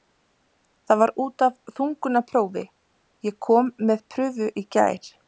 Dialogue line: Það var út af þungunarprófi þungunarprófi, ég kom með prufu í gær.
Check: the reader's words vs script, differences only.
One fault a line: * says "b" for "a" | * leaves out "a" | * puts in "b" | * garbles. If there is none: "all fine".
* leaves out "þungunarprófi"